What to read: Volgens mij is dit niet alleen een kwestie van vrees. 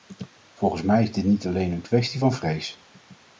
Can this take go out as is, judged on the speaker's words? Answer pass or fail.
pass